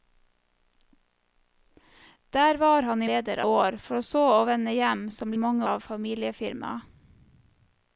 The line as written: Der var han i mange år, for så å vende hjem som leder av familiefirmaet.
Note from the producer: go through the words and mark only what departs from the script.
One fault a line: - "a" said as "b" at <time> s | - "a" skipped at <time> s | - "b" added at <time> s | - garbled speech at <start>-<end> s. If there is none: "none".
- "mange" said as "leder" at 3.0 s
- "leder" said as "mange" at 5.4 s